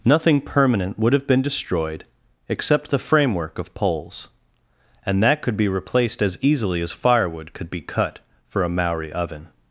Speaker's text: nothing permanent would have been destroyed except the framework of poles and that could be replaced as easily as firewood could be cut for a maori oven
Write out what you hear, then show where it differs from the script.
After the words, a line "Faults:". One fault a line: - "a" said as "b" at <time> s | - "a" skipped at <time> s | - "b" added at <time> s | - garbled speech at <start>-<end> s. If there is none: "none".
nothing permanent would have been destroyed except the framework of poles and that could be replaced as easily as firewood could be cut for a maori oven
Faults:
none